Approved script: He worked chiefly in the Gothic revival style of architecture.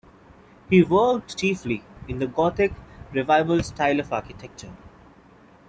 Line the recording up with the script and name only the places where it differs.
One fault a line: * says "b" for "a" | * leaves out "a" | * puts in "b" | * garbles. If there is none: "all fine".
all fine